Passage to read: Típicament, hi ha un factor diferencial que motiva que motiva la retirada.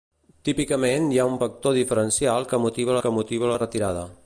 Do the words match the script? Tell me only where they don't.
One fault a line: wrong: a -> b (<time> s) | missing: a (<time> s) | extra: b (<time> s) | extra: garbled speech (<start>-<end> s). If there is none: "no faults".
no faults